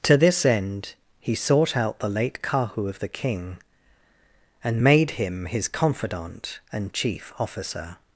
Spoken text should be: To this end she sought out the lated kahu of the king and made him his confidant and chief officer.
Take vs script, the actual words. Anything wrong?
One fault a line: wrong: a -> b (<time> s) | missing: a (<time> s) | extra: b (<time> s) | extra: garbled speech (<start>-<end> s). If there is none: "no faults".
wrong: she -> he (1.2 s)
wrong: lated -> late (2.1 s)